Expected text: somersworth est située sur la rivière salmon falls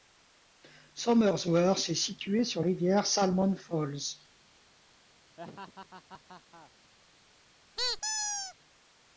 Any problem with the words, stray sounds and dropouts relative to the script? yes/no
yes